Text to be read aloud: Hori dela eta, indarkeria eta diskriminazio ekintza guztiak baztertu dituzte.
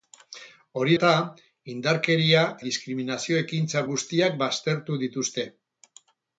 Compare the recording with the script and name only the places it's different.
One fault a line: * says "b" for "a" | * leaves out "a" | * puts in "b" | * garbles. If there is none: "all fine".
* leaves out "dela"
* leaves out "eta"